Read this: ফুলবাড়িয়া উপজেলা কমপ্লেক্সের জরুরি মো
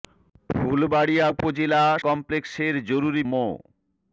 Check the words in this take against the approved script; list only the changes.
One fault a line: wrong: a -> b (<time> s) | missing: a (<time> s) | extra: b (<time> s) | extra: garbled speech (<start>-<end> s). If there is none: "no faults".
no faults